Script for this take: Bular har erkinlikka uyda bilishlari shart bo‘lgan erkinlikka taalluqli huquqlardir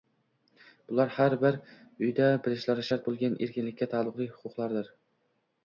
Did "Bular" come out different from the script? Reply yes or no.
no